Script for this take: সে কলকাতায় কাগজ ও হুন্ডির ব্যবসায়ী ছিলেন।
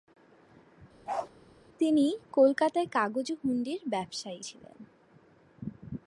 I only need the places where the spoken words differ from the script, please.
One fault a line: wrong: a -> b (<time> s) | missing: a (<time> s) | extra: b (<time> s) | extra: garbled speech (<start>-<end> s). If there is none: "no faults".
wrong: সে -> তিনি (1.8 s)